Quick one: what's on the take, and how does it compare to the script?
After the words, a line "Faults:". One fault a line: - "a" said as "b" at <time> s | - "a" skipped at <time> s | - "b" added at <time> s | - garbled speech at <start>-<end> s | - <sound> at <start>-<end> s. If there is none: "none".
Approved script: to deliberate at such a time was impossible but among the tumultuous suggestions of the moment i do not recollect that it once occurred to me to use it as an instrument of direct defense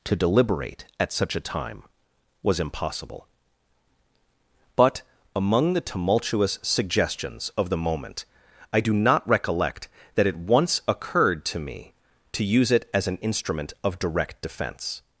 to deliberate at such a time was impossible but among the tumultuous suggestions of the moment i do not recollect that it once occurred to me to use it as an instrument of direct defense
Faults:
none